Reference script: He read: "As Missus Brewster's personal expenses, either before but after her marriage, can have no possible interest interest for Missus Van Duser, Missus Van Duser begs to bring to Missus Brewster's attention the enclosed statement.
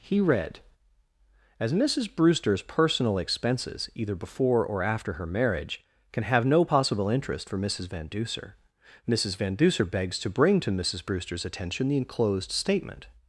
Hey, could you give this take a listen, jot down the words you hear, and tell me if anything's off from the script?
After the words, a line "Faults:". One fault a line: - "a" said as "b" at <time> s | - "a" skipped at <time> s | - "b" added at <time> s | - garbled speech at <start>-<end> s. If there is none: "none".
He read: "As Missus Brewster's personal expenses, either before or after her marriage, can have no possible interest for Missus Van Duser, Missus Van Duser begs to bring to Missus Brewster's attention the enclosed statement.
Faults:
- "but" said as "or" at 4.7 s
- "interest" skipped at 7.5 s